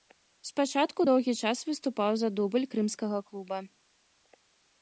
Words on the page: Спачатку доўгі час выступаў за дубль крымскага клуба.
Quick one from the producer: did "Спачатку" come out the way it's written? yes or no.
yes